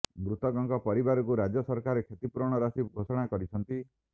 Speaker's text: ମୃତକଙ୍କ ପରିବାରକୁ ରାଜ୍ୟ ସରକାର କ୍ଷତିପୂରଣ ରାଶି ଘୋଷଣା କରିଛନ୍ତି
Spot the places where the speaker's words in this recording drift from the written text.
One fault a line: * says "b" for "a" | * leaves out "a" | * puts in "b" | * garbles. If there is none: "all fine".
all fine